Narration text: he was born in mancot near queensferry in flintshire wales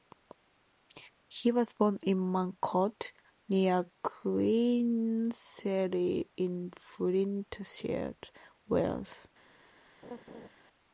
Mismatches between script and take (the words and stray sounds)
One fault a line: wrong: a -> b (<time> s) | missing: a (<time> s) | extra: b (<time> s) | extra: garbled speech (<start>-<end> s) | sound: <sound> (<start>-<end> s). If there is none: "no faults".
sound: laugh (10.0-10.5 s)